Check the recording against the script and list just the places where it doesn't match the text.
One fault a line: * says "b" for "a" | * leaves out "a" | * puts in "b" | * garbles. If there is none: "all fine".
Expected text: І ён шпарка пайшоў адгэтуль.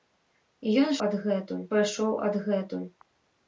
* says "адгэтуль" for "шпарка"